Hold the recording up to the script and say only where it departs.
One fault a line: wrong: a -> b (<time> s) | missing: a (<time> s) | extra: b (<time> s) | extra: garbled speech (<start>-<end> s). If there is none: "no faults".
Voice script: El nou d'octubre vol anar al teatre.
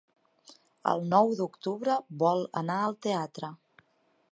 no faults